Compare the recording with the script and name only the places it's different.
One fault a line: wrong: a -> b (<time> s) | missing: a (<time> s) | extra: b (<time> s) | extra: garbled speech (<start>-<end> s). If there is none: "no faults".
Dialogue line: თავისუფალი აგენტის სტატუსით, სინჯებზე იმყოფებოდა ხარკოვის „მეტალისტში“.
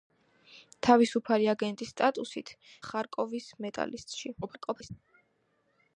missing: სინჯებზე იმყოფებოდა (2.5 s)
extra: garbled speech (4.4-4.9 s)